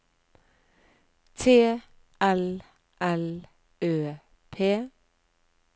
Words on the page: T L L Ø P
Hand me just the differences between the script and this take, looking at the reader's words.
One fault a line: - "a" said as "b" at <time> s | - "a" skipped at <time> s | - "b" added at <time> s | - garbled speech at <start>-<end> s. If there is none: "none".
none